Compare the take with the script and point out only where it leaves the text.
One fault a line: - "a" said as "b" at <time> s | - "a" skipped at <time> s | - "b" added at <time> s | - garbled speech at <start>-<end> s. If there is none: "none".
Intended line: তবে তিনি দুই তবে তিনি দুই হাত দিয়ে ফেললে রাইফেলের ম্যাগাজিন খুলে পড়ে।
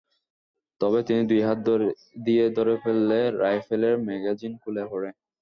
- "তবে তিনি দুই" skipped at 1.4 s
- "ধরে" added at 2.6 s